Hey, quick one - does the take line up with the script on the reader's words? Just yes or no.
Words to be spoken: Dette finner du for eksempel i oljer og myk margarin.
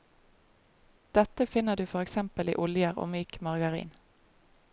yes